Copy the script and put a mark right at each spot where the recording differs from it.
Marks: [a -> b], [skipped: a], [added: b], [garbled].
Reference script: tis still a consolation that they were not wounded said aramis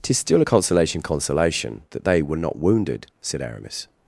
tis still a consolation [added: consolation] that they were not wounded said aramis